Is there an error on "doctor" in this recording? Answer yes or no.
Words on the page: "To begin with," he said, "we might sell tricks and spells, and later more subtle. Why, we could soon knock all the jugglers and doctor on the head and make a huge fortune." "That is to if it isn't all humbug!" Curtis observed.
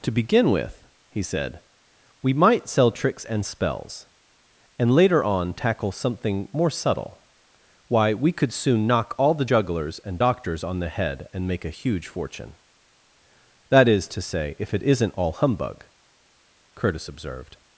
yes